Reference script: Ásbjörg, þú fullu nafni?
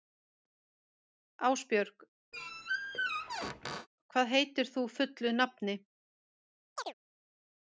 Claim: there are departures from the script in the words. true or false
true